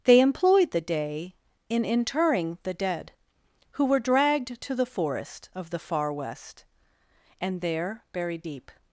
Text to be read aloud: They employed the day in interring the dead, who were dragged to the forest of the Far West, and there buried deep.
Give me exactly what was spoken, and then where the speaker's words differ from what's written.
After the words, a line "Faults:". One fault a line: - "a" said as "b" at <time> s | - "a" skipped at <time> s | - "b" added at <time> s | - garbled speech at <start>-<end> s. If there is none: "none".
They employed the day in interring the dead, who were dragged to the forest of the Far West, and there buried deep.
Faults:
none